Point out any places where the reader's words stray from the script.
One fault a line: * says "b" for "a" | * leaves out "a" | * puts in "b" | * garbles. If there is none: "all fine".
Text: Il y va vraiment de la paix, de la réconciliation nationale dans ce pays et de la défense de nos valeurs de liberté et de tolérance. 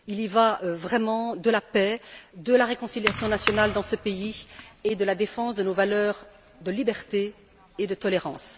all fine